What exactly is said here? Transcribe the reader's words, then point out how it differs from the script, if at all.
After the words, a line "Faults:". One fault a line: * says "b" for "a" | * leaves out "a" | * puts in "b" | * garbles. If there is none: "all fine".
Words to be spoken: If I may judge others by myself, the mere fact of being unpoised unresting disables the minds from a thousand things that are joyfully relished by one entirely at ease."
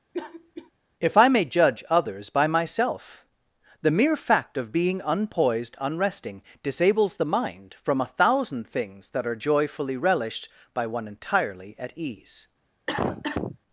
If I may judge others by myself, the mere fact of being unpoised unresting disables the mind from a thousand things that are joyfully relished by one entirely at ease."
Faults:
* says "mind" for "minds"